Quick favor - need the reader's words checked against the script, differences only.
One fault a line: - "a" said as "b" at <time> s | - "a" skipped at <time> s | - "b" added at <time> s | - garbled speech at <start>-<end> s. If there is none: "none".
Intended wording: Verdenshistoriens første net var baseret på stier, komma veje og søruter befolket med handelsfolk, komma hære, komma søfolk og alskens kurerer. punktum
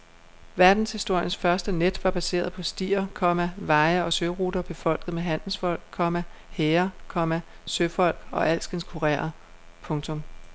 none